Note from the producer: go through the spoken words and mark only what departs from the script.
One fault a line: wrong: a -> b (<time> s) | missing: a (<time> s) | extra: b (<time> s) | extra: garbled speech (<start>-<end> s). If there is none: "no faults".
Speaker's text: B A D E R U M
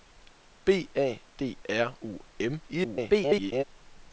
missing: E (1.6 s)
extra: garbled speech (2.7-3.6 s)